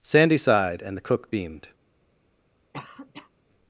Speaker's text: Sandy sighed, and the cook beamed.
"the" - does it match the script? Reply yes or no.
yes